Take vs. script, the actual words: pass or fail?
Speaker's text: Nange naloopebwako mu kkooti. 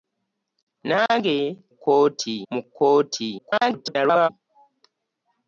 fail